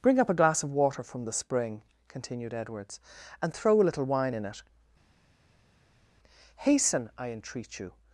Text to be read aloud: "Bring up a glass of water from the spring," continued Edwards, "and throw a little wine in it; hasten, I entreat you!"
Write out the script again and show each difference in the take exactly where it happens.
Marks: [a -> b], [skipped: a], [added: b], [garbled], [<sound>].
"Bring up a glass of water from the spring," continued Edwards, "and throw a little wine in it; hasten, I entreat you!"